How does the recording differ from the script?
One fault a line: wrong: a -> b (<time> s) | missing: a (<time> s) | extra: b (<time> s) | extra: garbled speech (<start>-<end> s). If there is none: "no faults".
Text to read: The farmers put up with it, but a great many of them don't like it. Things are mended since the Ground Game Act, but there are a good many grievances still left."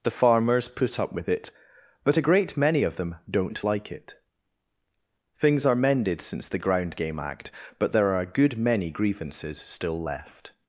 no faults